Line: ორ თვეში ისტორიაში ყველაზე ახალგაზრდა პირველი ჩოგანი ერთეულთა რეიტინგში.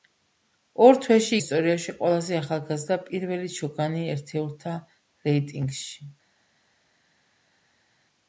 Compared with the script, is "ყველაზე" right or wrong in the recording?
right